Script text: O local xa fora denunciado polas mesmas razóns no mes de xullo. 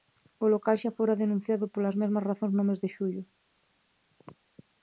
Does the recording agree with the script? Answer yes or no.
yes